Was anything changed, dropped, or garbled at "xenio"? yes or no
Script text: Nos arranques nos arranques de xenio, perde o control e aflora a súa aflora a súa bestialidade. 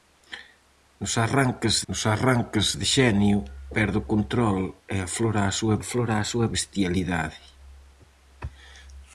no